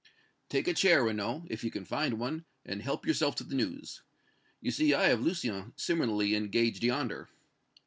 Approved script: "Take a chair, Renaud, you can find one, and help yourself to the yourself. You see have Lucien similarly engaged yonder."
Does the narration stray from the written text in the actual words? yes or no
yes